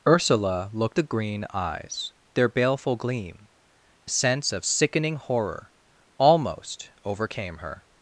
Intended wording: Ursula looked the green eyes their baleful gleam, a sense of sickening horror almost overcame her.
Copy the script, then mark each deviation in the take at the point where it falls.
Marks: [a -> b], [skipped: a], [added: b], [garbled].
Ursula looked the green eyes their baleful gleam, a sense of sickening horror almost overcame her.